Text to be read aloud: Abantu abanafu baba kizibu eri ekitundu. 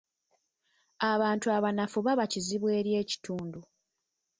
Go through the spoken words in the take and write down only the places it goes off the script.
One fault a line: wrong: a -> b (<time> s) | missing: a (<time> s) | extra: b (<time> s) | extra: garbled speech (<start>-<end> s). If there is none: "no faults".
no faults